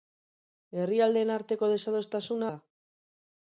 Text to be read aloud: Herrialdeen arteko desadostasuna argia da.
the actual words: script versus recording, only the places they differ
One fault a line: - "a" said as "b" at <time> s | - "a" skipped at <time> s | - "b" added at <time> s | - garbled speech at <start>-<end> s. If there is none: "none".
- "argia" skipped at 2.5 s